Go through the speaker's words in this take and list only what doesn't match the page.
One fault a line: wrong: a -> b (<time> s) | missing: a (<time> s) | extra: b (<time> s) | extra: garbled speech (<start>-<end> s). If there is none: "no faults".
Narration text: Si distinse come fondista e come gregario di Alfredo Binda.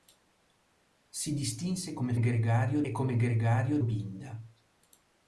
wrong: fondista -> gregario (2.2 s)
missing: di Alfredo (3.8 s)